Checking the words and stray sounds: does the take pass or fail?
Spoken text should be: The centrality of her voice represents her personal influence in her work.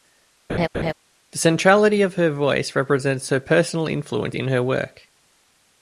fail